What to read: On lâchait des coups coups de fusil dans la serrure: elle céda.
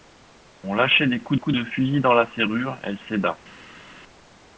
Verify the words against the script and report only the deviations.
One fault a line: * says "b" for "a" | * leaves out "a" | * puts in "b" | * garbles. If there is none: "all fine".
all fine